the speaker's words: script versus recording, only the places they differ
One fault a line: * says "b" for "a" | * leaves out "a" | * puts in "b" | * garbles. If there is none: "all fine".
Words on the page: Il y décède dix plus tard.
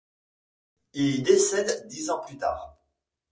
* puts in "ans"